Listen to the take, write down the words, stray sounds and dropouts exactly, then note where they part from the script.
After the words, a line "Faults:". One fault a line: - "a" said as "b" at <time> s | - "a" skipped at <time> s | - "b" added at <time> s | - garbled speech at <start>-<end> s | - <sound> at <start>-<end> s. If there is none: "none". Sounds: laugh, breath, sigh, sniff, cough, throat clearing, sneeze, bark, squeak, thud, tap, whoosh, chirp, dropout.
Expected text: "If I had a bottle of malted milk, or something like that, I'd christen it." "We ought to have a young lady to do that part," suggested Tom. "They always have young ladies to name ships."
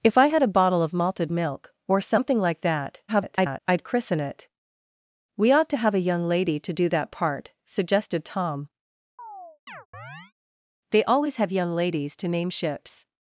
"If I had a bottle of malted milk, or something like that, [garbled] I'd christen it." "We ought to have a young lady to do that part," suggested Tom. "They always have young ladies to name ships."
Faults:
- garbled speech at 3.1-3.6 s
- chirp at 9.2-10.3 s